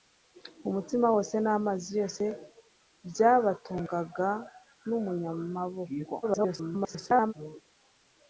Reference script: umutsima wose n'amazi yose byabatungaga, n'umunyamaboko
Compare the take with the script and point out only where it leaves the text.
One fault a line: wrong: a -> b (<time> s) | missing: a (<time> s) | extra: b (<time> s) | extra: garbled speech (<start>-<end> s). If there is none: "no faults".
extra: garbled speech (6.2-7.3 s)